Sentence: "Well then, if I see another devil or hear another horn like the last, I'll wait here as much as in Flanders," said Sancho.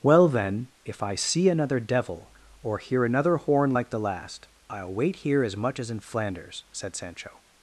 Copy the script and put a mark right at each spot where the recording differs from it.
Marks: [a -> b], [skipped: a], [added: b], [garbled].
"Well then, if I see another devil or hear another horn like the last, I'll wait here as much as in Flanders," said Sancho.